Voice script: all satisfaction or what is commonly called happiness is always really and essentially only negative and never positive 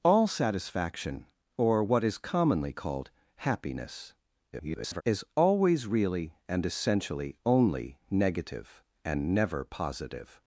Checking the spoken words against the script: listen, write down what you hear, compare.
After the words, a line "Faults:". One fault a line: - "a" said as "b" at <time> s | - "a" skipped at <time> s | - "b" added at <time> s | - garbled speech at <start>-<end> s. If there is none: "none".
all satisfaction or what is commonly called happiness [garbled] is always really and essentially only negative and never positive
Faults:
- garbled speech at 4.5-5.0 s